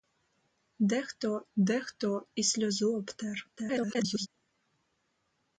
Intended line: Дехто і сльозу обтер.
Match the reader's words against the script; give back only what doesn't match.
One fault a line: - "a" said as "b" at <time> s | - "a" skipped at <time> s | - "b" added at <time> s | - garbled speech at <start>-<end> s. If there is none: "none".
- "дехто" added at 1.6 s
- garbled speech at 3.6-4.3 s